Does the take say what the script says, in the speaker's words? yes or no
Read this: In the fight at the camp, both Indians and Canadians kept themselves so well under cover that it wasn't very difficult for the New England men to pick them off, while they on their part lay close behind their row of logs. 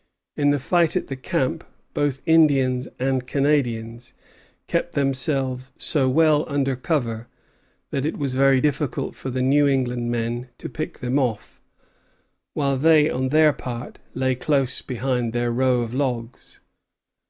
no